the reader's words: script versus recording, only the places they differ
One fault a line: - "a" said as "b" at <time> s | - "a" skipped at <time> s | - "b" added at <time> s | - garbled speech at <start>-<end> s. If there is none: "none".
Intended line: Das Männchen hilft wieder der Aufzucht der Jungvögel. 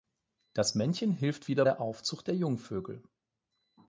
none